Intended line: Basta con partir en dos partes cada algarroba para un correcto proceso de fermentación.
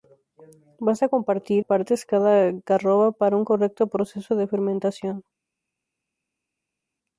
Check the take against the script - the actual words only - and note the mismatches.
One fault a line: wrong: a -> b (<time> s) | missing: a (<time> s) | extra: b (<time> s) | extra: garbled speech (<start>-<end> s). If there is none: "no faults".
missing: en dos (1.6 s)